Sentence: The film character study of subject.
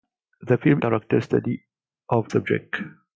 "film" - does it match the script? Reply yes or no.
yes